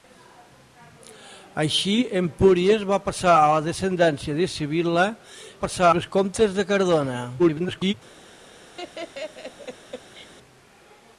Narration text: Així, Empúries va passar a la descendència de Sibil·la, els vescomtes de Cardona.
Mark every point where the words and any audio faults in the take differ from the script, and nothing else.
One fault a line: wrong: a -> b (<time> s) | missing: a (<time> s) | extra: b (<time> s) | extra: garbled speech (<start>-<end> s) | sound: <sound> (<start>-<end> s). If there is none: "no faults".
wrong: els -> passar (5.6 s)
extra: garbled speech (7.4-7.9 s)
sound: laugh (8.8-10.3 s)